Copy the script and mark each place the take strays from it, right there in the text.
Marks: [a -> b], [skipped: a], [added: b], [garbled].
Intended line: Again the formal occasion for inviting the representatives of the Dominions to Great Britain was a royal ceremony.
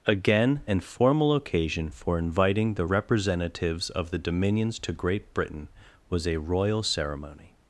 Again [the -> an] formal occasion for inviting the representatives of the Dominions to Great Britain was a royal ceremony.